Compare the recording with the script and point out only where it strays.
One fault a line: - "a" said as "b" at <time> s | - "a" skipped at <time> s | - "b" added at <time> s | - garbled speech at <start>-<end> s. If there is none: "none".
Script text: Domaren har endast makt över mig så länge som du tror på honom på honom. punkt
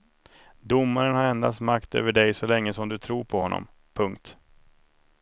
- "mig" said as "dig" at 2.1 s
- "på honom" skipped at 3.7 s